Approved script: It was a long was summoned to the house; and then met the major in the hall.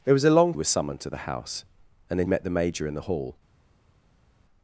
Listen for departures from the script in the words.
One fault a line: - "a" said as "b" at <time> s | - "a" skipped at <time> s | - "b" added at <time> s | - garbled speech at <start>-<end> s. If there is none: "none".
none